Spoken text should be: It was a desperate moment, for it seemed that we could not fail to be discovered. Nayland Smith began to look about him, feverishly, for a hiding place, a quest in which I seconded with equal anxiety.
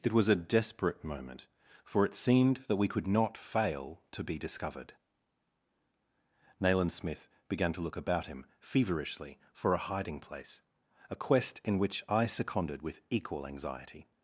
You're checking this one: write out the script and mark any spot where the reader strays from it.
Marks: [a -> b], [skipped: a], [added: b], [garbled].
It was a desperate moment, for it seemed that we could not fail to be discovered. Nayland Smith began to look about him, feverishly, for a hiding place, a quest in which I seconded with equal anxiety.